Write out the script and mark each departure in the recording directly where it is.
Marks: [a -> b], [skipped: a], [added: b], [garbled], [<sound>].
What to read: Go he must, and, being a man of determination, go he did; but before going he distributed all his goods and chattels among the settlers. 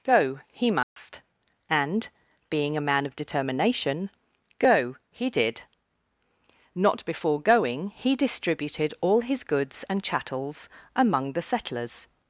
Go he must, [dropout] and, being a man of determination, go he did; [but -> not] before going he distributed all his goods and chattels among the settlers.